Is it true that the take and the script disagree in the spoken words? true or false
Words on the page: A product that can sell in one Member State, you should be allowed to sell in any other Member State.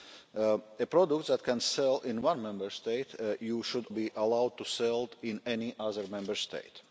false